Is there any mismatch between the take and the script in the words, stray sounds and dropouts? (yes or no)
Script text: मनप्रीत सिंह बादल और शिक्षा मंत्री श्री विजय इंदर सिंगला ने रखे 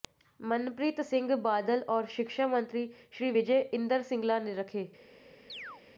yes